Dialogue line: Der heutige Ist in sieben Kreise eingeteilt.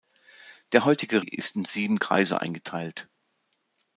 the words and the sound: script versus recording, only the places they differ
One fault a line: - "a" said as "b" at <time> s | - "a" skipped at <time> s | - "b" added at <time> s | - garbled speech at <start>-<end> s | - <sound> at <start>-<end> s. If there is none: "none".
none